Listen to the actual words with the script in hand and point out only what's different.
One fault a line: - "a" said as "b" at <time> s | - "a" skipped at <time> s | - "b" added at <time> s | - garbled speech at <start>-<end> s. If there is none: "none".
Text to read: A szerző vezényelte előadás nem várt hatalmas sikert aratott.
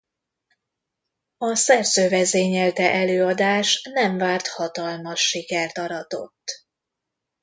none